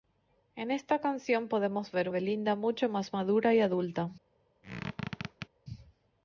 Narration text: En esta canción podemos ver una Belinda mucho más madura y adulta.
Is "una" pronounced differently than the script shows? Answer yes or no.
yes